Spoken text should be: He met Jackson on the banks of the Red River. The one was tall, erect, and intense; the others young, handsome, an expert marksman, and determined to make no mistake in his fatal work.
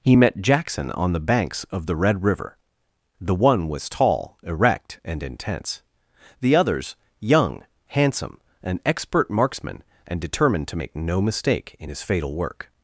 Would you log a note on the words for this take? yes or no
no